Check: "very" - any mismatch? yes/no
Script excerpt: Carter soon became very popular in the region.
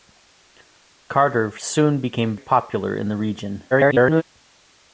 yes